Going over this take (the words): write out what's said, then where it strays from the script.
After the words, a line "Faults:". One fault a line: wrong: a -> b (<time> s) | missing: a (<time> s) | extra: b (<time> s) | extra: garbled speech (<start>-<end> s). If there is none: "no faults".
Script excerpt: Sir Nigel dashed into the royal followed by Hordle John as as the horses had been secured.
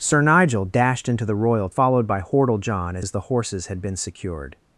Sir Nigel dashed into the royal followed by Hordle John as as the horses had been secured.
Faults:
no faults